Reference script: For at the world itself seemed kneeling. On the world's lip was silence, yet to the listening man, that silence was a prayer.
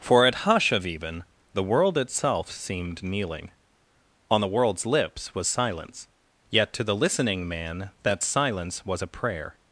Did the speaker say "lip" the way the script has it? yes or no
no